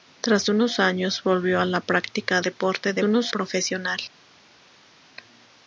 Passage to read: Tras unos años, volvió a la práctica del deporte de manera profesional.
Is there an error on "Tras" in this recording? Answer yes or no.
no